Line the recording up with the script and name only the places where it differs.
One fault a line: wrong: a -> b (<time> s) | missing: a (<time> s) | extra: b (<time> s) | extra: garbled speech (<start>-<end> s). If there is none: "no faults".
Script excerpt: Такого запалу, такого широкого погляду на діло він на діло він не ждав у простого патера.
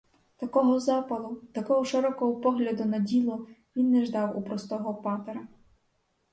missing: на діло він (3.9 s)